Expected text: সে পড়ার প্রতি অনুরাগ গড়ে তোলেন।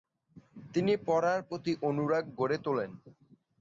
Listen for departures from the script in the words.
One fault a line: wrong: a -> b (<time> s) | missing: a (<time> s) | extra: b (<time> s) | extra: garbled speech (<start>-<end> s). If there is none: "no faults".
wrong: সে -> তিনি (0.7 s)